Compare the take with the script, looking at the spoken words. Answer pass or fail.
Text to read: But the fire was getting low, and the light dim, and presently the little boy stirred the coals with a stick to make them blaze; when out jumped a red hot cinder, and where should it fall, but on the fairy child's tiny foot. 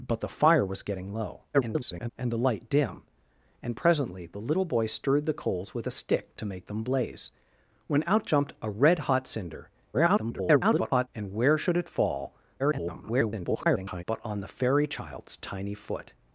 fail